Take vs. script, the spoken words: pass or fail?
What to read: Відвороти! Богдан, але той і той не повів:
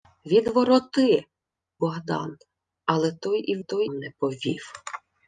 pass